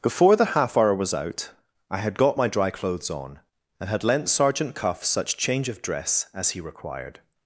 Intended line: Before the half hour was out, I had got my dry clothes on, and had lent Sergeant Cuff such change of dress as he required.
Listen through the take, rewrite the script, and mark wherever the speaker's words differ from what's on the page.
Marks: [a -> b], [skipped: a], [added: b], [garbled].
Before the half hour was out, I had got my dry clothes on, and had lent Sergeant Cuff such change of dress as he required.